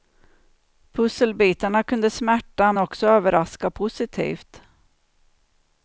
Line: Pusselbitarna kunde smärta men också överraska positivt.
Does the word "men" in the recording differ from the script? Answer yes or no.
yes